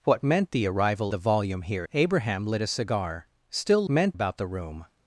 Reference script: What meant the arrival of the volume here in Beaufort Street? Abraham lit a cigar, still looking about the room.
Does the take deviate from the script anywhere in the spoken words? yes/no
yes